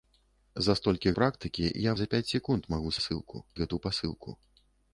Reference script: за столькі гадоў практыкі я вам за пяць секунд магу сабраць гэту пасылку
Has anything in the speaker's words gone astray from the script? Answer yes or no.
yes